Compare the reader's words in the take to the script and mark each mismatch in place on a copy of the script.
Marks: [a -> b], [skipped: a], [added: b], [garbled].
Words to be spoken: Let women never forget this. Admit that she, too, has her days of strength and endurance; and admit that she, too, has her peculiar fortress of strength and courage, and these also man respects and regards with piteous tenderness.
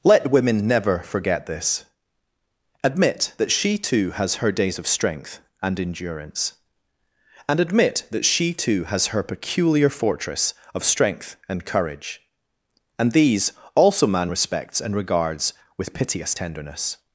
Let women never forget this. Admit that she, too, has her days of strength and endurance; and admit that she, too, has her peculiar fortress of strength and courage, and these also man respects and regards with piteous tenderness.